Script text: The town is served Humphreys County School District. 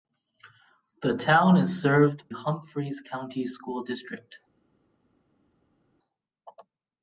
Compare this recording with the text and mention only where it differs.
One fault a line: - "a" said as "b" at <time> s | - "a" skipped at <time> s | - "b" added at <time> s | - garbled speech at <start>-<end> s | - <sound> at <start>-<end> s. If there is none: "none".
none